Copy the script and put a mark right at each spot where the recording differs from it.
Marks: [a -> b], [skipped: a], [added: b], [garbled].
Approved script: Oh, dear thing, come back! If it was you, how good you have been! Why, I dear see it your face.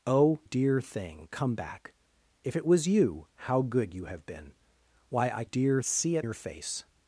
Oh, dear thing, come back! If it was you, how good you have been! Why, I dear see it your face.